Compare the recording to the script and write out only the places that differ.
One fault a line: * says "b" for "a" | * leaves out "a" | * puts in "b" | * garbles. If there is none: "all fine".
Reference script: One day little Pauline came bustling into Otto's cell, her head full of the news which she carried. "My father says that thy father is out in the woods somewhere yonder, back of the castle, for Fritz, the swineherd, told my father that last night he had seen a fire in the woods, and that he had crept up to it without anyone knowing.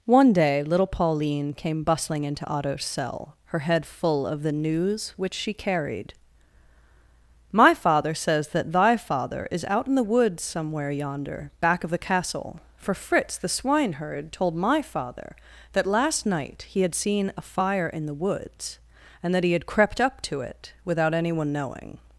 all fine